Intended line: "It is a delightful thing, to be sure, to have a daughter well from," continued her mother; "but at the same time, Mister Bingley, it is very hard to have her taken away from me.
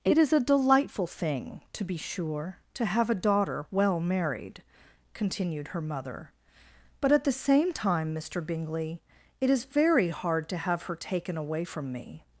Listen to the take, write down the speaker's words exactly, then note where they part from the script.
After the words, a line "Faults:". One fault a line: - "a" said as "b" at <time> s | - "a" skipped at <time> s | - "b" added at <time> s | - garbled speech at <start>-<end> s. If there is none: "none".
"It is a delightful thing, to be sure, to have a daughter well married," continued her mother; "but at the same time, Mister Bingley, it is very hard to have her taken away from me.
Faults:
- "from" said as "married" at 4.0 s